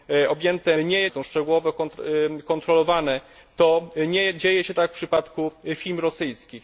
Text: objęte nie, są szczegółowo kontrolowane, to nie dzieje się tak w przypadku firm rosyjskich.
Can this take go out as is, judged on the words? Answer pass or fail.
pass